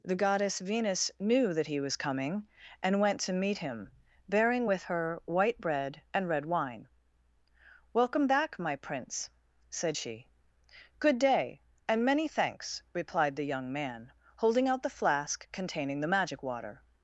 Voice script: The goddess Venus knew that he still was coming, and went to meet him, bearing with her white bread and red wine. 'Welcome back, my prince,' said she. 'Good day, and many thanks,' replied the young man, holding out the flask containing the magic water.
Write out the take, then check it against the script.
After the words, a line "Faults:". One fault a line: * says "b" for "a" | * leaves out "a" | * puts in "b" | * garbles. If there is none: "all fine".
The goddess Venus knew that he was coming, and went to meet him, bearing with her white bread and red wine. 'Welcome back, my prince,' said she. 'Good day, and many thanks,' replied the young man, holding out the flask containing the magic water.
Faults:
* leaves out "still"